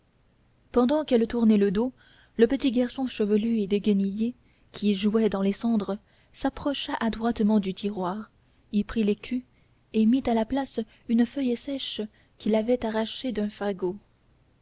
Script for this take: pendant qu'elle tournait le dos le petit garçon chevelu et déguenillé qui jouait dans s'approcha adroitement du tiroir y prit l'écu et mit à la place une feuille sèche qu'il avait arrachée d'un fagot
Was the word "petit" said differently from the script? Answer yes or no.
no